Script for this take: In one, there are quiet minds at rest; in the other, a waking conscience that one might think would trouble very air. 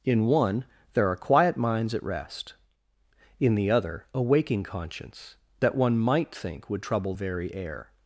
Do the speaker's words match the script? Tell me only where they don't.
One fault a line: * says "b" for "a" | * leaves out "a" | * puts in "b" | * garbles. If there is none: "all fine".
all fine